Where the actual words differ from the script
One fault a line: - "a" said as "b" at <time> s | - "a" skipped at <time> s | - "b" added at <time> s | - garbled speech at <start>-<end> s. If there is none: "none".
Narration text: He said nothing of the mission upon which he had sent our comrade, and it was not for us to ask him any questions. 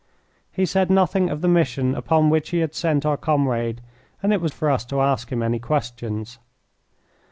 - "not" skipped at 4.5 s